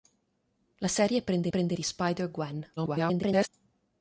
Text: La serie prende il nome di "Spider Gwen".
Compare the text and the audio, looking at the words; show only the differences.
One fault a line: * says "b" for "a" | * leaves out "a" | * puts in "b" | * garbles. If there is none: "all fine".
* says "prende" for "nome"
* garbles